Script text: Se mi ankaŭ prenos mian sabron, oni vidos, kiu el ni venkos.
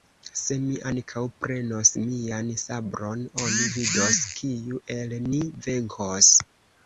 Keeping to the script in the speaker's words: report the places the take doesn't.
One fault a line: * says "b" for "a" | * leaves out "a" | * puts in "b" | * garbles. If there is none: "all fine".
all fine